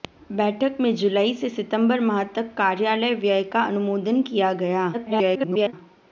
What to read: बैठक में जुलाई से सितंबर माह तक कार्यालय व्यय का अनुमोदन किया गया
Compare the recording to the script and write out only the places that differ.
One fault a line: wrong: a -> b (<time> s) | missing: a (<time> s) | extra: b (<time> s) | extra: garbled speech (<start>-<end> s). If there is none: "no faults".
extra: garbled speech (4.9-5.7 s)